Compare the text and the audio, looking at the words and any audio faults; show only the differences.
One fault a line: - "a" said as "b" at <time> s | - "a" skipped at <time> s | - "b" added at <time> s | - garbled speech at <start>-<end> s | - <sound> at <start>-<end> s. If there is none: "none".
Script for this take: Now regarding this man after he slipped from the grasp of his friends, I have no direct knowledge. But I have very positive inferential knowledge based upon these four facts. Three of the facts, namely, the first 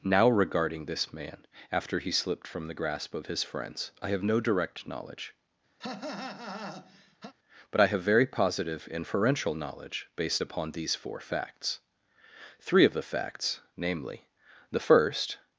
- cough at 5.8-7.3 s